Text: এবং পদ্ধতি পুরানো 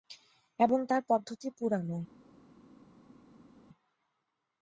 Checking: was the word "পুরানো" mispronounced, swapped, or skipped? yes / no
no